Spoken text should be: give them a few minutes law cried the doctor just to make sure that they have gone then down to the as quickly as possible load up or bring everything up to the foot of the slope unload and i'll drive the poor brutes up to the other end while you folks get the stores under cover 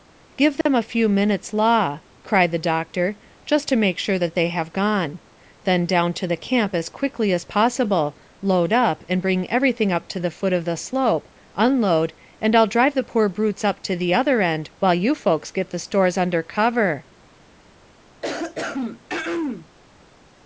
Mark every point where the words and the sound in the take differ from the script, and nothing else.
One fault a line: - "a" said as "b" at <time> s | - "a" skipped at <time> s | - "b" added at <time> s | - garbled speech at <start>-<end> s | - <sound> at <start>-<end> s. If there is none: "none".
- dropout at 0.6-0.7 s
- "camp" added at 6.3 s
- "or" said as "and" at 9.1 s
- throat clearing at 18.2-19.7 s